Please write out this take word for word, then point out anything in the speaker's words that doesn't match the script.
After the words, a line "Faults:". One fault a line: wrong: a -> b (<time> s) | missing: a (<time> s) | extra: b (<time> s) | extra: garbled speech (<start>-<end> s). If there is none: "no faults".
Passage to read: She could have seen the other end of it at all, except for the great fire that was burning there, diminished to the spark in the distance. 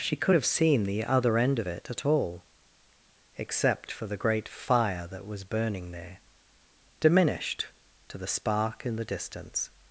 She could have seen the other end of it at all, except for the great fire that was burning there, diminished to the spark in the distance.
Faults:
no faults